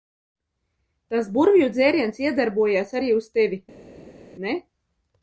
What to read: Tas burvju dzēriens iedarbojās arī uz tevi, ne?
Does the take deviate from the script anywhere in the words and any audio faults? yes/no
no